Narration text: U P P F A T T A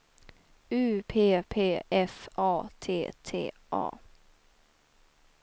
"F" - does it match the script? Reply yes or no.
yes